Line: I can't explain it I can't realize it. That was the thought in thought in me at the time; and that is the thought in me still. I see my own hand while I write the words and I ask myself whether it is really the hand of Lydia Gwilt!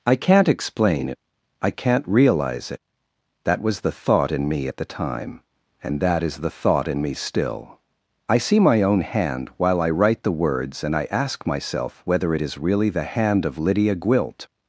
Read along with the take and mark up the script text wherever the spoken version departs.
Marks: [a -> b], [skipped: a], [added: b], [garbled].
I can't explain it I can't realize it. That was the thought in [skipped: thought in] me at the time; and that is the thought in me still. I see my own hand while I write the words and I ask myself whether it is really the hand of Lydia Gwilt!